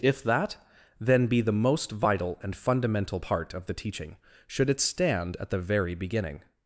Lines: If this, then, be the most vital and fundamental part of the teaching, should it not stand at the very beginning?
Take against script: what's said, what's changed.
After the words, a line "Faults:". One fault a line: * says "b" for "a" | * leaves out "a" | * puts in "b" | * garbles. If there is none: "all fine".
If that, then, be the most vital and fundamental part of the teaching, should it stand at the very beginning?
Faults:
* says "that" for "this"
* leaves out "not"